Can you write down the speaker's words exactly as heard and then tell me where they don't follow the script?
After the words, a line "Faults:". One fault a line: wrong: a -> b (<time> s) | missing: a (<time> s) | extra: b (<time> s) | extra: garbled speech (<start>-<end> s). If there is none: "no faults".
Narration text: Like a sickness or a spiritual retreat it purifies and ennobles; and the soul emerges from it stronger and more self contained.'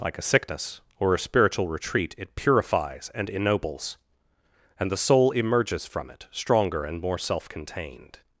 Like a sickness or a spiritual retreat it purifies and ennobles; and the soul emerges from it stronger and more self contained.'
Faults:
no faults